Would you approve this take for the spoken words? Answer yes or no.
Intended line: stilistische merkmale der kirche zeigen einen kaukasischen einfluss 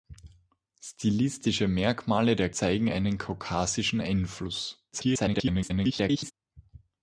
no